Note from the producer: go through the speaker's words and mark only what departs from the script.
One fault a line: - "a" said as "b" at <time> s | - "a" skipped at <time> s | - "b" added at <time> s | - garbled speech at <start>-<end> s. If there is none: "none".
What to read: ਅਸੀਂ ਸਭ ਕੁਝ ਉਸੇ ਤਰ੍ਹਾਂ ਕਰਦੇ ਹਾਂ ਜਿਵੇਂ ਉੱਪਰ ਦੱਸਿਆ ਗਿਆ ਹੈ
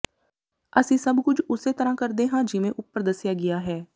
none